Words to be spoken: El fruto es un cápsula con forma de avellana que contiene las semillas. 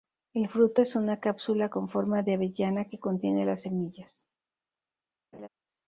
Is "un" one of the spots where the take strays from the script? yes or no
yes